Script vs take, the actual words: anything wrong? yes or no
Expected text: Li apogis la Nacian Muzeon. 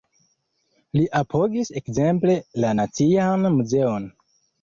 yes